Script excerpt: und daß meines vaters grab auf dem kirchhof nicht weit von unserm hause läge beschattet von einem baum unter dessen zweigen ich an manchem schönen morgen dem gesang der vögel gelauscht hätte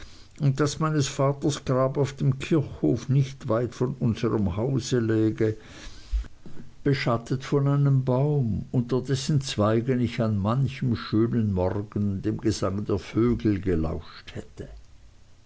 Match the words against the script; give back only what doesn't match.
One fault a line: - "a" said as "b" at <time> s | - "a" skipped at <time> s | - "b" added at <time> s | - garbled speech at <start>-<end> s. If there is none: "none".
none